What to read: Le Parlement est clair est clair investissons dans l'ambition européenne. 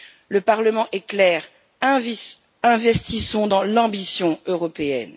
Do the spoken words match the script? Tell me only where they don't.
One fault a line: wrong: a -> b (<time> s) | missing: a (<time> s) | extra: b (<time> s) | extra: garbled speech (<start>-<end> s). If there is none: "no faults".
missing: est clair (1.4 s)